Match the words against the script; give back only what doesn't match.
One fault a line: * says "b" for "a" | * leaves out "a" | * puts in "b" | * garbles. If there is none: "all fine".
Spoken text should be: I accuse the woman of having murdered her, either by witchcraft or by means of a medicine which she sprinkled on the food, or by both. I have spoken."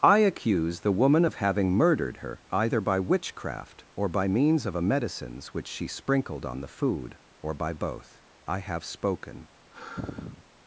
* says "medicines" for "medicine"